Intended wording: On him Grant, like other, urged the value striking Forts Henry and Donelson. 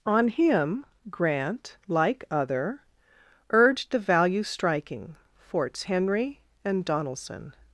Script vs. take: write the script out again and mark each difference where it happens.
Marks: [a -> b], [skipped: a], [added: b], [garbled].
On him Grant, like other, urged the value striking Forts Henry and Donelson.